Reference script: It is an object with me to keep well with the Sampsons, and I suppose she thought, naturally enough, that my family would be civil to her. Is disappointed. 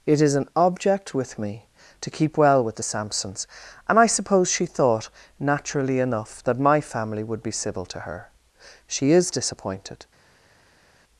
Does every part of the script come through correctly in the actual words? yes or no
no